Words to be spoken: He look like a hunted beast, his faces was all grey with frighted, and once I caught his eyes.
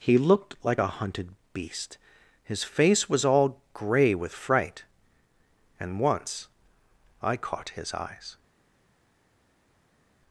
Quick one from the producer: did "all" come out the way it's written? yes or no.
yes